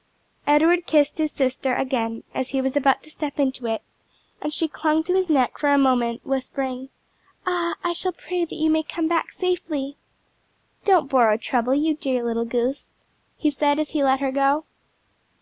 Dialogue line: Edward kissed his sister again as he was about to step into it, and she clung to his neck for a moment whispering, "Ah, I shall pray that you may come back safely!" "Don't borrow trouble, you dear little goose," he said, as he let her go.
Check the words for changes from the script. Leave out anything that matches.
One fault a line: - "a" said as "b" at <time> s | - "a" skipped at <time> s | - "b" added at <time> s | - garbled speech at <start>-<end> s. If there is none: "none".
none